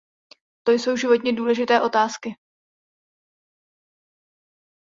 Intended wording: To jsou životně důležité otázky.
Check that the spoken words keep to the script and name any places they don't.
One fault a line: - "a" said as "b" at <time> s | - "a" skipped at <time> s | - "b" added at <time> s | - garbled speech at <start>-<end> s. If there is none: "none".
none